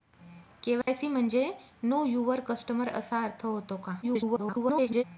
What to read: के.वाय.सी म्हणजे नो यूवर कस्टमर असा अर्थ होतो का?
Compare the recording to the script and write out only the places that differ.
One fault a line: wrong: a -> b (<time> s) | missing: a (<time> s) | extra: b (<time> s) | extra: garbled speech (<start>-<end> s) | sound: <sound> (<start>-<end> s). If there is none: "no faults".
sound: dropout (0.8-0.9 s)
extra: garbled speech (4.0-5.0 s)